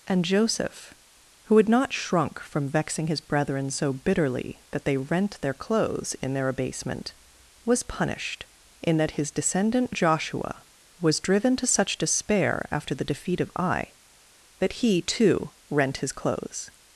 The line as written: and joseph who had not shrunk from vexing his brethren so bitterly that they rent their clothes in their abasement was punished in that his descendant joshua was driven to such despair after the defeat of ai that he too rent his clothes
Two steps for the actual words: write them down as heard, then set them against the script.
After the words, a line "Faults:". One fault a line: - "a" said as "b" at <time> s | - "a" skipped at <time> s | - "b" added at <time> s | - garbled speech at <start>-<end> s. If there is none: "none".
and joseph who had not shrunk from vexing his brethren so bitterly that they rent their clothes in their abasement was punished in that his descendant joshua was driven to such despair after the defeat of ai that he too rent his clothes
Faults:
none